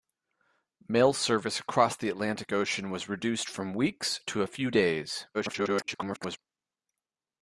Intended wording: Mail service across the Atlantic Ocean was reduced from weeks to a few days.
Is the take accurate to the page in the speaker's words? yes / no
no